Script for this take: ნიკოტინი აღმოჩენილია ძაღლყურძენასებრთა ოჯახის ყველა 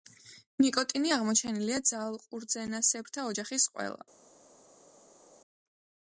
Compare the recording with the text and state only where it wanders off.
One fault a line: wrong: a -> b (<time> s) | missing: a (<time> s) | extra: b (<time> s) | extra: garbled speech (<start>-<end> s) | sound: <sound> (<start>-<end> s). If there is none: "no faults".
no faults